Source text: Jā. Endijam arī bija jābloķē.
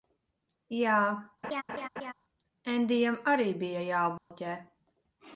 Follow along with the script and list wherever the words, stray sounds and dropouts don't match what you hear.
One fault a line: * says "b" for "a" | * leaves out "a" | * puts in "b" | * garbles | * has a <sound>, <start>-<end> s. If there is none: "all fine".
* has a laugh, 1.4-2.1 s
* has a dropout, 4.2-4.3 s